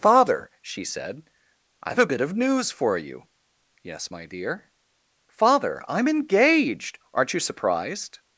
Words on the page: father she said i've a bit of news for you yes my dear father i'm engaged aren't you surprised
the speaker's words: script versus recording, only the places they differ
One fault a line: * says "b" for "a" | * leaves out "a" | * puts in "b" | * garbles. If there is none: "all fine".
all fine